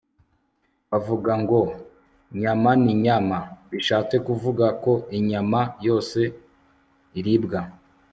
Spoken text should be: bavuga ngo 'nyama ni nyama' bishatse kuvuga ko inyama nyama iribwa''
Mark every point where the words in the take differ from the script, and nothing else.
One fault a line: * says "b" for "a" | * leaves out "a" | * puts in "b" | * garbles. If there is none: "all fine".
* says "yose" for "nyama"